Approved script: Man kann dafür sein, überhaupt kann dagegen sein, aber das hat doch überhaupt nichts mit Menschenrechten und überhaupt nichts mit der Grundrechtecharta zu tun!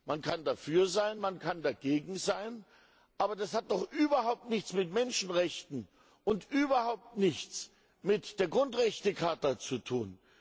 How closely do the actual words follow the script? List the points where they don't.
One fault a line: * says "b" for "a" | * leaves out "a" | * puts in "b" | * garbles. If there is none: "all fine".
* says "man" for "überhaupt"